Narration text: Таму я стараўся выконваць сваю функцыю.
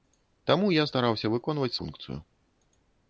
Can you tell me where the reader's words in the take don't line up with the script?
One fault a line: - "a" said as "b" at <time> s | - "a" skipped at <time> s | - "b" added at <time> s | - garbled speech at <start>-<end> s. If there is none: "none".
- "сваю" skipped at 1.7 s